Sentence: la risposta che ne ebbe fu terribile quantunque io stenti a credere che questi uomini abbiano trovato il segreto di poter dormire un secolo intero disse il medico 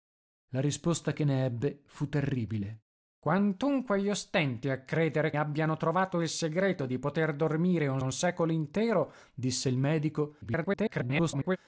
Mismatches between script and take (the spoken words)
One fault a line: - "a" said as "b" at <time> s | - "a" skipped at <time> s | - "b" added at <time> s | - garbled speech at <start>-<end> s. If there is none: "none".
- "che questi uomini" skipped at 5.3 s
- "un" added at 8.0 s
- garbled speech at 10.4-11.6 s